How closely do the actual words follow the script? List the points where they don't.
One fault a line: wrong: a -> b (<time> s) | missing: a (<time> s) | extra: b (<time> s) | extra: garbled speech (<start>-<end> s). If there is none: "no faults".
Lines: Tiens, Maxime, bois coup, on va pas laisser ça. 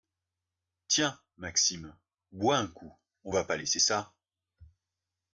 extra: un (2.6 s)